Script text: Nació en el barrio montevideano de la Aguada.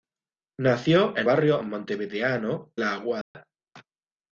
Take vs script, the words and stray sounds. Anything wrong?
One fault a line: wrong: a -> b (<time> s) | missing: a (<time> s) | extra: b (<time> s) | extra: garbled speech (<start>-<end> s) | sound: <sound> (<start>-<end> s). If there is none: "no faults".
missing: el (1.3 s)
missing: de (2.7 s)
sound: dropout (3.2-3.3 s)